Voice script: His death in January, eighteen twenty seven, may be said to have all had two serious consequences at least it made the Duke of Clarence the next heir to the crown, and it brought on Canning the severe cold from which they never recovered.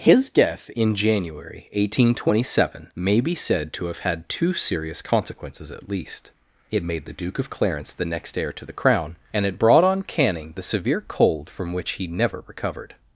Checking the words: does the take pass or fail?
fail